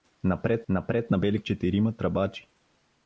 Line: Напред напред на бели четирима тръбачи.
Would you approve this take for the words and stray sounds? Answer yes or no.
yes